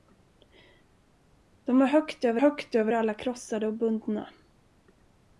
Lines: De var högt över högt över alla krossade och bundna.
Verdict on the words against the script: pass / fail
pass